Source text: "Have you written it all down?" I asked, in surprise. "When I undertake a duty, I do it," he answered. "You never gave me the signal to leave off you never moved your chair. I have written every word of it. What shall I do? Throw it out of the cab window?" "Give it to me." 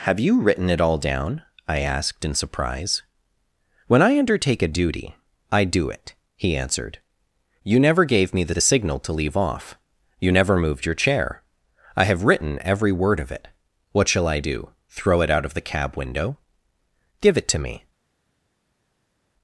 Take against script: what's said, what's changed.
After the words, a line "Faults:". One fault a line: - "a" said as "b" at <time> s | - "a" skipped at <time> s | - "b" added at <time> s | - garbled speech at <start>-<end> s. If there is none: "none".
"Have you written it all down?" I asked, in surprise. "When I undertake a duty, I do it," he answered. "You never gave me the the signal to leave off you never moved your chair. I have written every word of it. What shall I do? Throw it out of the cab window?" "Give it to me."
Faults:
- "the" added at 8.5 s